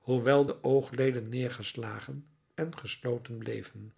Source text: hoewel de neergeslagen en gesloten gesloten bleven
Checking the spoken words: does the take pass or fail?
fail